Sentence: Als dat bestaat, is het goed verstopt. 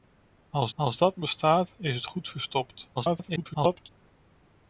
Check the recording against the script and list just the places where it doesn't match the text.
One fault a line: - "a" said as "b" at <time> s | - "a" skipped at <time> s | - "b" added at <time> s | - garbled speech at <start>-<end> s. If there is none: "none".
- "als" added at 0.7 s
- garbled speech at 3.0-3.9 s